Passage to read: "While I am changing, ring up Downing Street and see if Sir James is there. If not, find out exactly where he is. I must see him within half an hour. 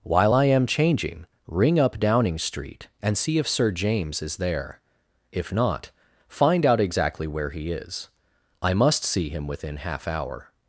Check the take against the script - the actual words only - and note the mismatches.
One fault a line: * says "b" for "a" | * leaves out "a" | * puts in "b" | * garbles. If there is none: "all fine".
* leaves out "an"